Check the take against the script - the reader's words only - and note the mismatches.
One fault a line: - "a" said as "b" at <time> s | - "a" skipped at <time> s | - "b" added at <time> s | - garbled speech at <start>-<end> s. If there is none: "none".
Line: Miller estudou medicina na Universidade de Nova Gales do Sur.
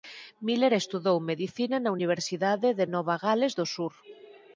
none